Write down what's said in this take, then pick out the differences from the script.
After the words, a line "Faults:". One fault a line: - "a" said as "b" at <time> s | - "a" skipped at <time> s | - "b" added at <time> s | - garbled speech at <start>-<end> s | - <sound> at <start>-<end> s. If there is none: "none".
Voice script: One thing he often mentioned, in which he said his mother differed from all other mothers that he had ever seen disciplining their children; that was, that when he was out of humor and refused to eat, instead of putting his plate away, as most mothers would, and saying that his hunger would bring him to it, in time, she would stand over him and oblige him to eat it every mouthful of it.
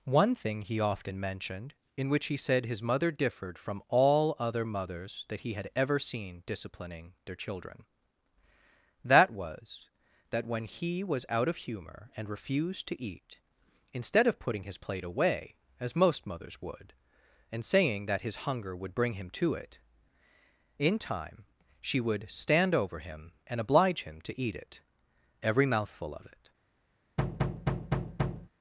One thing he often mentioned, in which he said his mother differed from all other mothers that he had ever seen disciplining their children; that was, that when he was out of humor and refused to eat, instead of putting his plate away, as most mothers would, and saying that his hunger would bring him to it, in time, she would stand over him and oblige him to eat it every mouthful of it.
Faults:
- thud at 27.2-28.5 s